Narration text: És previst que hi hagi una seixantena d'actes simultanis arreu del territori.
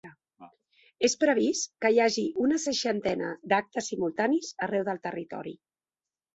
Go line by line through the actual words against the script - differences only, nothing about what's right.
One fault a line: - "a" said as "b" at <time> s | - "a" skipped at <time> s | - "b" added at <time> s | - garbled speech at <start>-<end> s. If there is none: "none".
none